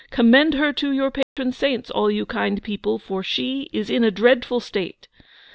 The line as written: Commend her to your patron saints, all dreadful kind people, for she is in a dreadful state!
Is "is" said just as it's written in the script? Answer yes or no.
yes